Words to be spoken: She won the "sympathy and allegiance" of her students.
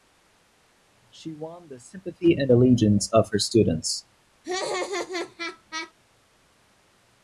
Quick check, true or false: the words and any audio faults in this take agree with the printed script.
false